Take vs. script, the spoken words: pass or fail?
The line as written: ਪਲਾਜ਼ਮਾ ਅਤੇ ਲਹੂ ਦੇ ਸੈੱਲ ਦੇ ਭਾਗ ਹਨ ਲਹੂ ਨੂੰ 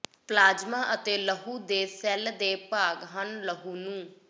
pass